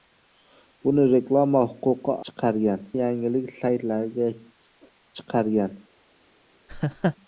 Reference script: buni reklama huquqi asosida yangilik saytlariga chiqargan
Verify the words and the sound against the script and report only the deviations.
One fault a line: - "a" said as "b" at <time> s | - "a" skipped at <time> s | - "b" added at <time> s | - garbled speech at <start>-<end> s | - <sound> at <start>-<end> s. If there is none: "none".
- "asosida" said as "chiqargan" at 2.3 s
- laugh at 6.7-7.2 s